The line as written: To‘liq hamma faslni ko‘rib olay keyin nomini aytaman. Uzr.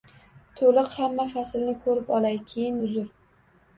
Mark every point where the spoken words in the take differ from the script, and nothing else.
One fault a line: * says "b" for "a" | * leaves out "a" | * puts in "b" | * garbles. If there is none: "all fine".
* leaves out "nomini aytaman"